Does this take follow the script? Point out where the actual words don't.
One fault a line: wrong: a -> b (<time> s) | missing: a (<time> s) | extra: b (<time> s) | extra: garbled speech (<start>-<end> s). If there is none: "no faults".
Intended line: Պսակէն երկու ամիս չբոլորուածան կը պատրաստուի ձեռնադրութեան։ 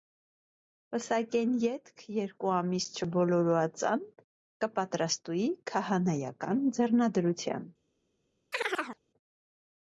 extra: ետք (1.6 s)
extra: քահանայական (5.7 s)